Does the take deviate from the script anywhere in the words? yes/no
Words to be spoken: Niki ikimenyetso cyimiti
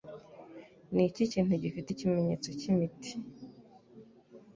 yes